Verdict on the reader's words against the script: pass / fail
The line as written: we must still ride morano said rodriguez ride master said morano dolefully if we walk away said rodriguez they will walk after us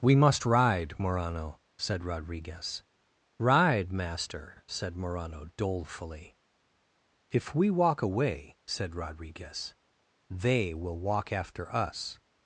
fail